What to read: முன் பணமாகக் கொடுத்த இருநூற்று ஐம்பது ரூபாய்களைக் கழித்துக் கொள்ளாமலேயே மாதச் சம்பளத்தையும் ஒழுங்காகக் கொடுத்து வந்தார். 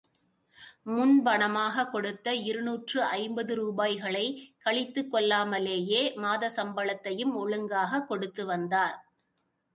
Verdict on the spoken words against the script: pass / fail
pass